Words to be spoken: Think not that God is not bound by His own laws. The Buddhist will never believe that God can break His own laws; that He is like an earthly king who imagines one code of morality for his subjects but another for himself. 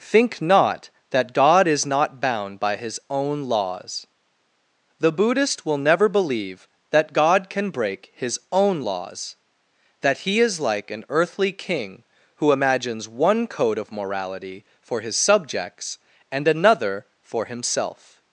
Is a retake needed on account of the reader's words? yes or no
yes